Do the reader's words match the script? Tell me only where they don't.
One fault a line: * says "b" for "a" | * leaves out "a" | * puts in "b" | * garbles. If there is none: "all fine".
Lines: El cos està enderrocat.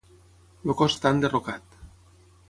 all fine